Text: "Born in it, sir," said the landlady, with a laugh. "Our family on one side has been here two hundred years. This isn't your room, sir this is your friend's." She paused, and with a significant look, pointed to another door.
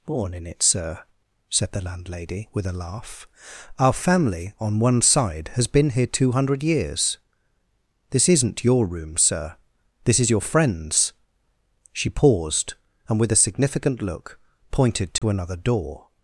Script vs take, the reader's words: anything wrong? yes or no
no